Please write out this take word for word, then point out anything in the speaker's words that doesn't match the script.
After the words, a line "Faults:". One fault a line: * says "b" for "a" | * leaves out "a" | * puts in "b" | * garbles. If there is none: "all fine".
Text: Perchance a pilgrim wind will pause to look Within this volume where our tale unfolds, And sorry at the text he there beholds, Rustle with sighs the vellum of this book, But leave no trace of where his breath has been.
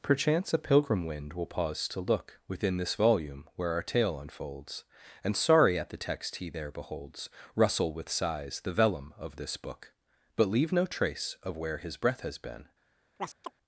Perchance a pilgrim wind will pause to look Within this volume where our tale unfolds, And sorry at the text he there beholds, Rustle with sighs the vellum of this book, But leave no trace of where his breath has been.
Faults:
all fine